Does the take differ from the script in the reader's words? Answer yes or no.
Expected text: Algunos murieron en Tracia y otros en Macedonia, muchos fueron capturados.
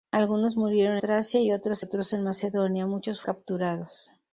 yes